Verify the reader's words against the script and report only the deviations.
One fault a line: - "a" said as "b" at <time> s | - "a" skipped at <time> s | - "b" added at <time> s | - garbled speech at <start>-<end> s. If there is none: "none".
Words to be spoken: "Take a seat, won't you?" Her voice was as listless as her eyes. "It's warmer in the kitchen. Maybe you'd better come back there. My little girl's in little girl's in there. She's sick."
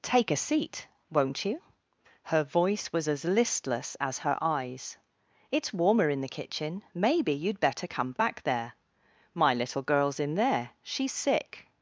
- "little girl's in" skipped at 10.4 s